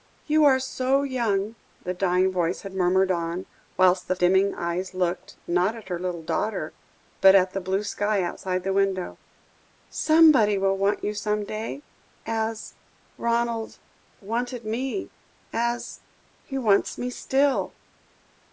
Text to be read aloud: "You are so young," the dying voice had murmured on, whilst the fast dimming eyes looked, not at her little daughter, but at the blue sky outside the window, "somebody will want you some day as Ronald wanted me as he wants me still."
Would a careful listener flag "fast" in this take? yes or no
yes